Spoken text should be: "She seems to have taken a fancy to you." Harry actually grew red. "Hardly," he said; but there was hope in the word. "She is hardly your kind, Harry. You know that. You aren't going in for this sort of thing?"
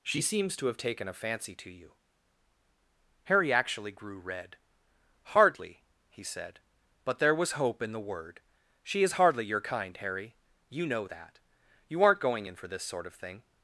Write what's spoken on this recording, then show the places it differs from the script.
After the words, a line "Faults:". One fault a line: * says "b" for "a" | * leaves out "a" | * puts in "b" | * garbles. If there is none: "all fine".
"She seems to have taken a fancy to you." Harry actually grew red. "Hardly," he said; but there was hope in the word. "She is hardly your kind, Harry. You know that. You aren't going in for this sort of thing?"
Faults:
all fine